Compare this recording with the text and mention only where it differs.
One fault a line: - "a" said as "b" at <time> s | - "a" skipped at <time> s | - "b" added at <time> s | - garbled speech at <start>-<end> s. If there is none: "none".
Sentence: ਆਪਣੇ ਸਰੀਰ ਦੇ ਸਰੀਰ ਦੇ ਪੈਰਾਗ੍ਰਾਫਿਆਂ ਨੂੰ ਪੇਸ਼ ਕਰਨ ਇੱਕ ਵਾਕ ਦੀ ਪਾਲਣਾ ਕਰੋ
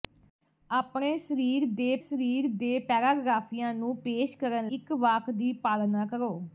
none